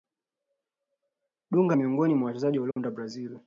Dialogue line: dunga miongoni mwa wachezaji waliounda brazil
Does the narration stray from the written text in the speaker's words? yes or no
no